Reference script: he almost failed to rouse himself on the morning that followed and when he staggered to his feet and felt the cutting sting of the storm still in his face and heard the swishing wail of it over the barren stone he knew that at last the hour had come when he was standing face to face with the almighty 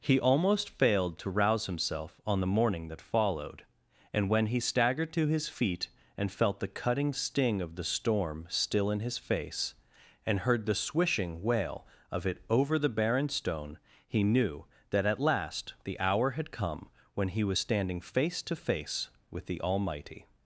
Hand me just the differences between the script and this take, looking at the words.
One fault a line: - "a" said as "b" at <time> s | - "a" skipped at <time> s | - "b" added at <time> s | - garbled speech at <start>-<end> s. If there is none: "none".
none